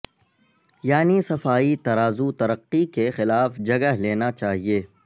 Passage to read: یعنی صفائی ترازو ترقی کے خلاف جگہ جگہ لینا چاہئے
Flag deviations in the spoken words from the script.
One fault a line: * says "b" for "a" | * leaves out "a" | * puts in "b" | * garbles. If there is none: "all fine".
* leaves out "جگہ"